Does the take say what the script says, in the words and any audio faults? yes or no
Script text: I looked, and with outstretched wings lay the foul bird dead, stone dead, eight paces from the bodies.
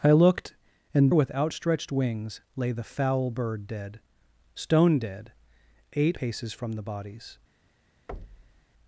no